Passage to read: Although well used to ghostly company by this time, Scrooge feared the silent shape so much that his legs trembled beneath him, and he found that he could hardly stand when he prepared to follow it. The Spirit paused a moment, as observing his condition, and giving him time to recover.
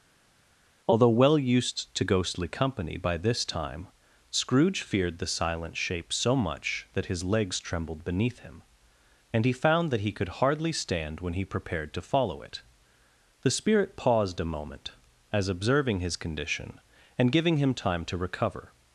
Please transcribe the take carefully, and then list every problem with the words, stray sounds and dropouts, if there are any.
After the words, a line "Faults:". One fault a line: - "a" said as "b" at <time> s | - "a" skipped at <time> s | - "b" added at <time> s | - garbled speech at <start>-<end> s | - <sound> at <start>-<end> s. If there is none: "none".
Although well used to ghostly company by this time, Scrooge feared the silent shape so much that his legs trembled beneath him, and he found that he could hardly stand when he prepared to follow it. The Spirit paused a moment, as observing his condition, and giving him time to recover.
Faults:
none